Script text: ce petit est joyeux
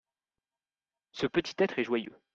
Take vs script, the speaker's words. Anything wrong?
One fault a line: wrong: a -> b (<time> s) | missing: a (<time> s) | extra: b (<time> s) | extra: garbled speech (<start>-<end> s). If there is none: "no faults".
extra: être (1.6 s)